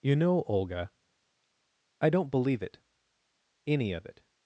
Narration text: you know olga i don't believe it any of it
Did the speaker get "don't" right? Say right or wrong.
right